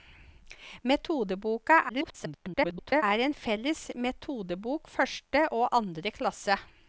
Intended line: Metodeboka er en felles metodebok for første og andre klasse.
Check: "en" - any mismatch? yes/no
no